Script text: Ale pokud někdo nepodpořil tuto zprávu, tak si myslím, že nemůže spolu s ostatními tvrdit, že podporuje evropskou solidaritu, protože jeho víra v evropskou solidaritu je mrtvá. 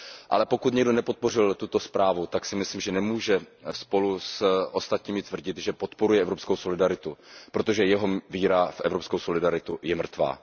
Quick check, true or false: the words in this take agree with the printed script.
true